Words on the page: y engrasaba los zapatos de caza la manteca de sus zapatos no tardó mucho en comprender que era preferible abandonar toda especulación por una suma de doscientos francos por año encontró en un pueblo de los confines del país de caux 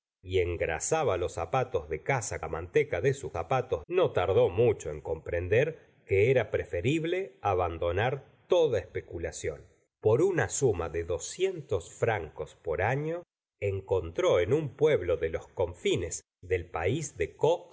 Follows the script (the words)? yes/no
yes